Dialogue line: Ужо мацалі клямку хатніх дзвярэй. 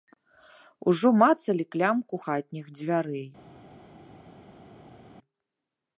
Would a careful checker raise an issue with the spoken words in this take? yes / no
no